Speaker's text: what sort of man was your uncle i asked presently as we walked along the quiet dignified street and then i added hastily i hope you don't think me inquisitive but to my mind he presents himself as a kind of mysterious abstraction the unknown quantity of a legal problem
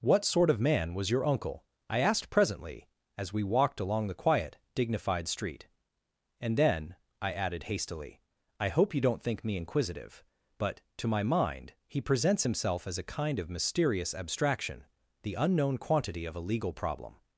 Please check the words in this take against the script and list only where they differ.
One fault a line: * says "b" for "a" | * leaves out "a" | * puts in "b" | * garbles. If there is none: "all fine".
all fine